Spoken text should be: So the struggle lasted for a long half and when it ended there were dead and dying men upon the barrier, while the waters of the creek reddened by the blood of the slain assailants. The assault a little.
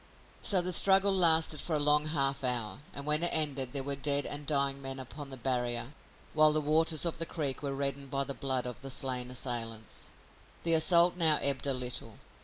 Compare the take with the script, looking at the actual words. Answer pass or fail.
fail